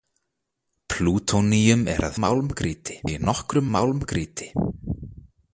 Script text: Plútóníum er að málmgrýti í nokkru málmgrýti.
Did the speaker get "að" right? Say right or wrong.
right